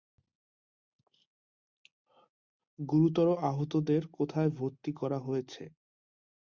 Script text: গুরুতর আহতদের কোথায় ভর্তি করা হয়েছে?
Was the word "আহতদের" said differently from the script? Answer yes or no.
no